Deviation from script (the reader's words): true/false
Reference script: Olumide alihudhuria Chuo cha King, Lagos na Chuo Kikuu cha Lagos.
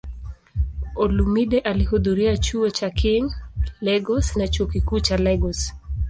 false